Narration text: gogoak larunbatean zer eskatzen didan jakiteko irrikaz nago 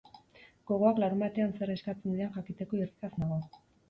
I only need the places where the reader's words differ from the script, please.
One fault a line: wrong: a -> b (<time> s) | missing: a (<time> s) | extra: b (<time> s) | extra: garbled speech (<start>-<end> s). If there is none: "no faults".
no faults